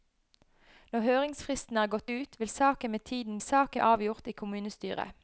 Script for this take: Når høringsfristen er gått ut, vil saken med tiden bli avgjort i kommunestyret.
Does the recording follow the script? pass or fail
fail